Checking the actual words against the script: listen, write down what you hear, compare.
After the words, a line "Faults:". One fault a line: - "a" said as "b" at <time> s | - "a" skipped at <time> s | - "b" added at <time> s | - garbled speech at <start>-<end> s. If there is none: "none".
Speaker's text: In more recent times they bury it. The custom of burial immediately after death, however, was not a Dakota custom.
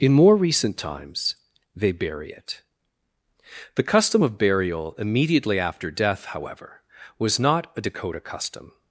In more recent times they bury it. The custom of burial immediately after death, however, was not a Dakota custom.
Faults:
none